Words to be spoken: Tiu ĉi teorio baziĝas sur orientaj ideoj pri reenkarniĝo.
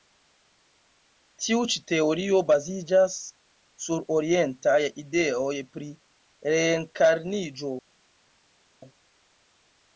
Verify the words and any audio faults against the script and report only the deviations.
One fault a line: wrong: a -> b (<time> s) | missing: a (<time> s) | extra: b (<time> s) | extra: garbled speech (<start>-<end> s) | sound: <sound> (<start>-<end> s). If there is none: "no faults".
no faults